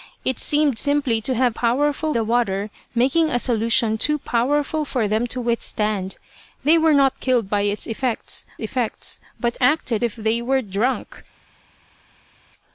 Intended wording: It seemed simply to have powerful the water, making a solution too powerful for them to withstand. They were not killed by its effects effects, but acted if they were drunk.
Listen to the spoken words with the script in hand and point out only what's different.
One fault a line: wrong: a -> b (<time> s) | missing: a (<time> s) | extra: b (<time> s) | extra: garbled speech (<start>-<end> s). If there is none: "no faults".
no faults